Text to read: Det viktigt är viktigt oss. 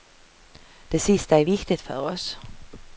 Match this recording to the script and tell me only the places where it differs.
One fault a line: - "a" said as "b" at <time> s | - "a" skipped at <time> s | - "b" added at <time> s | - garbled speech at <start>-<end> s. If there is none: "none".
- "viktigt" said as "sista" at 1.0 s
- "för" added at 1.8 s